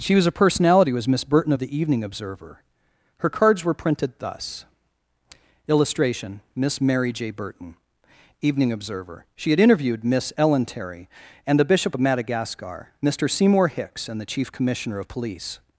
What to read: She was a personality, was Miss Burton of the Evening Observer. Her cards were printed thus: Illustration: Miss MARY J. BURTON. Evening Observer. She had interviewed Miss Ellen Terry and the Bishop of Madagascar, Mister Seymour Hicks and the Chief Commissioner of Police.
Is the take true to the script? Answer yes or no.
yes